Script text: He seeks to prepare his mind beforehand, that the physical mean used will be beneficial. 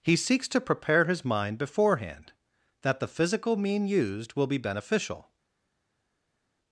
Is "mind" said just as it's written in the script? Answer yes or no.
yes